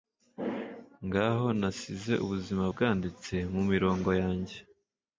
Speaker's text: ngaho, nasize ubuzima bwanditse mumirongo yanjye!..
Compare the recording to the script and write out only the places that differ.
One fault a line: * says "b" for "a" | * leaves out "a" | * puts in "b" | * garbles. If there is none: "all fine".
all fine